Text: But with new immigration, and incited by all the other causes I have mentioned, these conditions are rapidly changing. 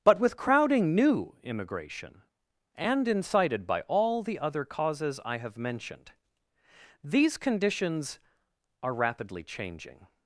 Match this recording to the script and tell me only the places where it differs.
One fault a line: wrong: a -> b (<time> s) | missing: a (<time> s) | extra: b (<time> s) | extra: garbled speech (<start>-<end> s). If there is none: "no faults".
extra: crowding (0.4 s)